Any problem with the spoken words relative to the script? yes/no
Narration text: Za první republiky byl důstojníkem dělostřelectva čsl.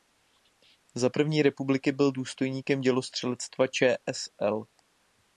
no